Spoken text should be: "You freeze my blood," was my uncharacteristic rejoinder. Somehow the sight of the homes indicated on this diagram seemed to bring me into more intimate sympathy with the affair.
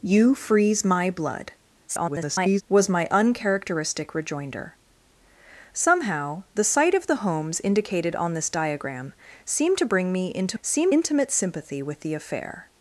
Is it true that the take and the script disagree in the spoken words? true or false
true